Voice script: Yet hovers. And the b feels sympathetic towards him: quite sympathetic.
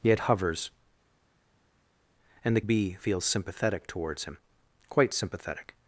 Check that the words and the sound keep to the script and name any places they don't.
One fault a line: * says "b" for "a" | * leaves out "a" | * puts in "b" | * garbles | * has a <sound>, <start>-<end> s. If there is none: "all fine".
all fine